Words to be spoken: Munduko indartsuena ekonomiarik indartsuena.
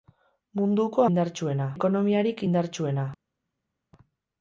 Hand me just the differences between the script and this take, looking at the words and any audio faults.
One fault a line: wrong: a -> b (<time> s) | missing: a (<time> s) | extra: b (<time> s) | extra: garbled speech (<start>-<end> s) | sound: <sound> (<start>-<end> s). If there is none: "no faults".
no faults